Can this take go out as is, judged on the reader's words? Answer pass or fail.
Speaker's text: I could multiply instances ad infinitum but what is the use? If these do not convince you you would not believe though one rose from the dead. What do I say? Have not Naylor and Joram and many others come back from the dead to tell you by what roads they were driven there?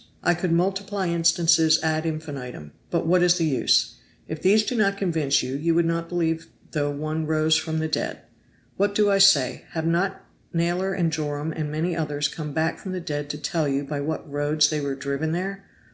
pass